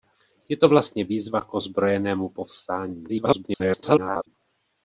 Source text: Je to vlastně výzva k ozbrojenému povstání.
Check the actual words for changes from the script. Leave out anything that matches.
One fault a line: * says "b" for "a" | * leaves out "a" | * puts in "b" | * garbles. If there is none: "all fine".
* garbles